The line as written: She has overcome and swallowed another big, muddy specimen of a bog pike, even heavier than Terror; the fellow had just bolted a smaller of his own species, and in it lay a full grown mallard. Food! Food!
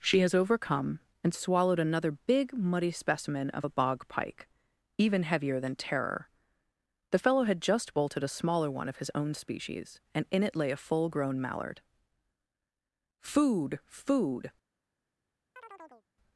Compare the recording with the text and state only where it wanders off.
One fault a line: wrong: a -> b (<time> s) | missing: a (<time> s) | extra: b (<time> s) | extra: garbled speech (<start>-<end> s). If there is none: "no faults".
extra: one (8.7 s)